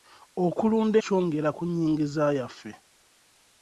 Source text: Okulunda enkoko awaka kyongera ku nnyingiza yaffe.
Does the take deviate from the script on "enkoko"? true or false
true